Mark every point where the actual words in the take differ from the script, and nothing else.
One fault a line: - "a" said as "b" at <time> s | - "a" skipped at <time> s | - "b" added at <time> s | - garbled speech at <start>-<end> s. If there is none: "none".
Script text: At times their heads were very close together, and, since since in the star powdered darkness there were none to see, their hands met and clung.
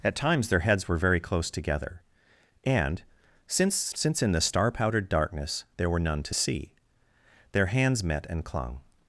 none